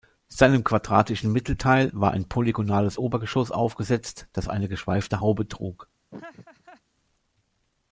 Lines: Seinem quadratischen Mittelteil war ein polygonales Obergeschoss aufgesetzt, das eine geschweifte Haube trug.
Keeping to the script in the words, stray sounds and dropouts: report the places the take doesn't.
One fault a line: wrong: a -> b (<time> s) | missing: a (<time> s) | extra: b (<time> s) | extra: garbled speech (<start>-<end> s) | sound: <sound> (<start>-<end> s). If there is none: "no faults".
sound: laugh (6.1-6.8 s)